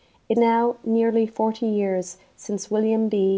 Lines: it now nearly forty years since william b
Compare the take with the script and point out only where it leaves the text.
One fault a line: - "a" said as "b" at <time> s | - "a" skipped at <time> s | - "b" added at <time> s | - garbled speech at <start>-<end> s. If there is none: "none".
none